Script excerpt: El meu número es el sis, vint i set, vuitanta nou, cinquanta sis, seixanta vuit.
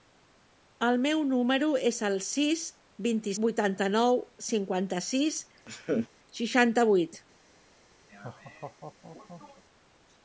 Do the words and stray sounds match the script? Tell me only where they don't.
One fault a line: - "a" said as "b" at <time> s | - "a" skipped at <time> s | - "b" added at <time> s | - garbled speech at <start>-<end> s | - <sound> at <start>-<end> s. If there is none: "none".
- "set" skipped at 3.4 s
- laugh at 5.7-6.1 s
- laugh at 8.1-9.6 s